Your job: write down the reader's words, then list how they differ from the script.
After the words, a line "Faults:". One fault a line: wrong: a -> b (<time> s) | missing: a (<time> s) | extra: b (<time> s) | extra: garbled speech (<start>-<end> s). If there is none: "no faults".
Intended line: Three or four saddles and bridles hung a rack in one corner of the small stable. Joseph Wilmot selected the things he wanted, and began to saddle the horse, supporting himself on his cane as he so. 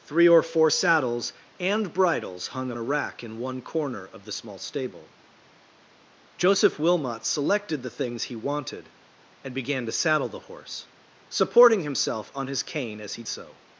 Three or four saddles and bridles hung a rack in one corner of the small stable. Joseph Wilmot selected the things he wanted, and began to saddle the horse, supporting himself on his cane as he so.
Faults:
no faults